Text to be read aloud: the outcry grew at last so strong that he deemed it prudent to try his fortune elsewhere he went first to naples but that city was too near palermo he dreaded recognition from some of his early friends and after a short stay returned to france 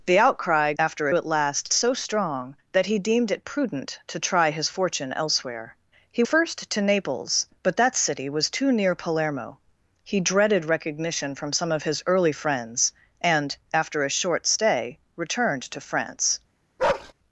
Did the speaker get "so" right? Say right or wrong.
right